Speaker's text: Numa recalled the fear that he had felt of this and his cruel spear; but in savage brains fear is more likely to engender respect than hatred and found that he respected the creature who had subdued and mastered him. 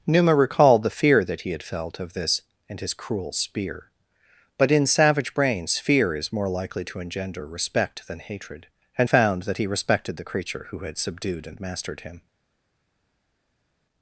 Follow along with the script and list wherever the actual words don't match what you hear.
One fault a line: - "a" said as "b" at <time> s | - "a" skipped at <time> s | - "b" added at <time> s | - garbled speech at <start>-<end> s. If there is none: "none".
none